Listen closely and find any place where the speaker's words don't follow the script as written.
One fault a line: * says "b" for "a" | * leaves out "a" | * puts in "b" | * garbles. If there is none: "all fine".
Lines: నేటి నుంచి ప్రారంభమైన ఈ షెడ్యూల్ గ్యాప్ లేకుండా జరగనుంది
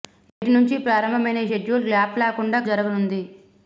all fine